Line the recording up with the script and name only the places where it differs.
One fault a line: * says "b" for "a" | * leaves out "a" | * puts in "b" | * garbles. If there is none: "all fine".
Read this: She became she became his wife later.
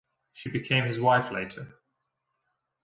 * leaves out "she became"